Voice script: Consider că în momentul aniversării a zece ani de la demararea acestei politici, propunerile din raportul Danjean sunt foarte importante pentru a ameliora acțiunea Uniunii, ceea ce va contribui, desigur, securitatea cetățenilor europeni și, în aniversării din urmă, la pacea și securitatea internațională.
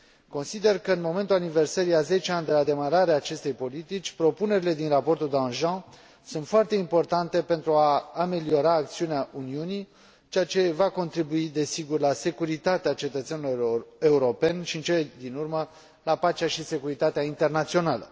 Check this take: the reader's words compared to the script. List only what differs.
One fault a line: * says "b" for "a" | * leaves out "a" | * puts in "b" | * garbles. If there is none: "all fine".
* puts in "la"
* says "cele" for "aniversării"